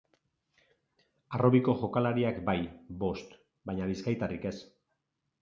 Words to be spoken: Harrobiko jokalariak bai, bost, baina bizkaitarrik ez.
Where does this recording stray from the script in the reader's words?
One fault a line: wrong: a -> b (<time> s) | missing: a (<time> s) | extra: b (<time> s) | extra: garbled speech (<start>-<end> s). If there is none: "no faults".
no faults